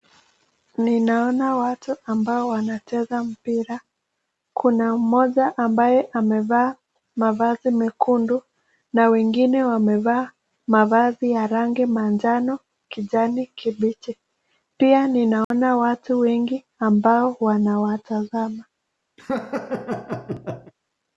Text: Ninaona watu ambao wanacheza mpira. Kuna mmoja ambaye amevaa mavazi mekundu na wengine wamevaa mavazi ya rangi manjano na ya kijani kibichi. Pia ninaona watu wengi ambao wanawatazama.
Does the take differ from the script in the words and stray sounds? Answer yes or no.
yes